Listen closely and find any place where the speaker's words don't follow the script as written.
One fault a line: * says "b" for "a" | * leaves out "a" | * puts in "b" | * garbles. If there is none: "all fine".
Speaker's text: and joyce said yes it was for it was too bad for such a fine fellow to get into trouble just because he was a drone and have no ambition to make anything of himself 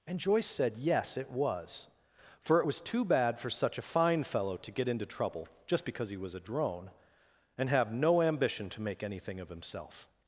all fine